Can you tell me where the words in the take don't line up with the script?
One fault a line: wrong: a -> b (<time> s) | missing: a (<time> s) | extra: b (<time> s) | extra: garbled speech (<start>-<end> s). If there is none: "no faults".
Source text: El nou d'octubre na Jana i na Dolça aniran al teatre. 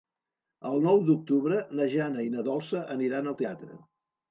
no faults